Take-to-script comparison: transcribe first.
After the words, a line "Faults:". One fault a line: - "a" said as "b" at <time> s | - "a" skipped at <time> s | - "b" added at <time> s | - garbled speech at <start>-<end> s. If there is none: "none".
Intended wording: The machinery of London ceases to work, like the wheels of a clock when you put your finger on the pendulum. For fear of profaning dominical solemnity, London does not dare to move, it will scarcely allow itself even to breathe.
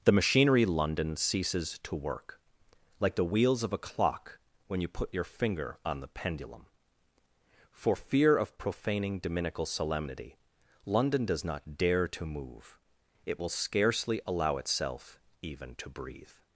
The machinery London ceases to work, like the wheels of a clock when you put your finger on the pendulum. For fear of profaning dominical solemnity, London does not dare to move, it will scarcely allow itself even to breathe.
Faults:
- "of" skipped at 0.7 s